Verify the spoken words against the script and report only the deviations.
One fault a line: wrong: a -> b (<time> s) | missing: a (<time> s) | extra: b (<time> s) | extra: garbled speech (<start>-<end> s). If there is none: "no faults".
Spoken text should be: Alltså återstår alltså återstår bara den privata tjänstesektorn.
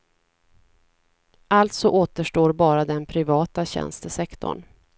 missing: alltså återstår (2.5 s)